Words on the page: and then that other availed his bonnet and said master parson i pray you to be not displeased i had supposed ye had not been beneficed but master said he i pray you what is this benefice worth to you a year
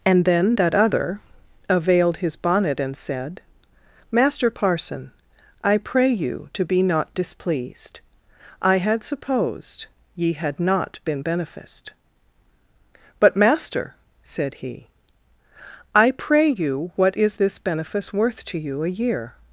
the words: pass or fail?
pass